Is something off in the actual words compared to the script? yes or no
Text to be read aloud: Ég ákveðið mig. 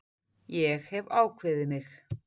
yes